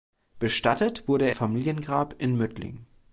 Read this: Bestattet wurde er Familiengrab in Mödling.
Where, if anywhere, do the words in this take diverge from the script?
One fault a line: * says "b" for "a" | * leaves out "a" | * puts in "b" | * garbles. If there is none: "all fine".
all fine